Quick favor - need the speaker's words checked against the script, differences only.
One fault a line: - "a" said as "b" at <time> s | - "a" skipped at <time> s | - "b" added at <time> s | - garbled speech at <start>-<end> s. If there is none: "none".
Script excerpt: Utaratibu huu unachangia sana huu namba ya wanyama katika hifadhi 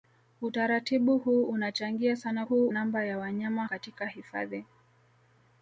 none